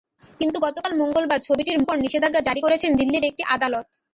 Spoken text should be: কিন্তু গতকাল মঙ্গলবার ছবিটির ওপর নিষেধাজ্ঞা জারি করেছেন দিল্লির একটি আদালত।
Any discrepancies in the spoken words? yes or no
no